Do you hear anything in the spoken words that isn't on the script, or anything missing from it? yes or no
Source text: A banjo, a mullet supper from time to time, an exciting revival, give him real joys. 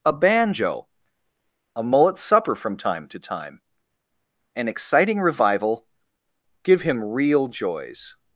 no